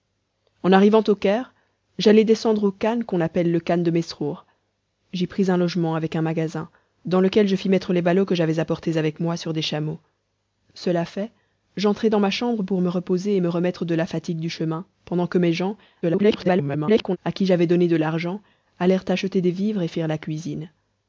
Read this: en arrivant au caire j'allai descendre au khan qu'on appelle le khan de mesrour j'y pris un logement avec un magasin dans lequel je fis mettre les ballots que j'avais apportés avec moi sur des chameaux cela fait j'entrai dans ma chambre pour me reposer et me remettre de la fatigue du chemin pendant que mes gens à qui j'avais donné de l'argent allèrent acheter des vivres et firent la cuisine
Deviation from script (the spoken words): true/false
true